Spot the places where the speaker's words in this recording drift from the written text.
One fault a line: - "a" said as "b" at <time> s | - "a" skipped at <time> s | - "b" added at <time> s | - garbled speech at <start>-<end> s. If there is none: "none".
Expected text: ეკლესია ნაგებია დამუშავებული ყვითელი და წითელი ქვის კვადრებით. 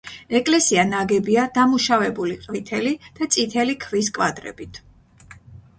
none